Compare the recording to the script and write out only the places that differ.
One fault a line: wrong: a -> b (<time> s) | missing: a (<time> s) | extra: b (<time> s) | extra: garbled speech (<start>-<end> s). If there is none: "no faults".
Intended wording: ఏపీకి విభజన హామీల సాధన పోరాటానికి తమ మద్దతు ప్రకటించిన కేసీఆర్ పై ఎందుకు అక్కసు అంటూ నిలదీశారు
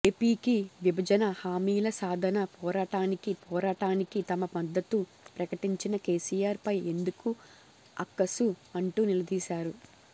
extra: పోరాటానికి (3.4 s)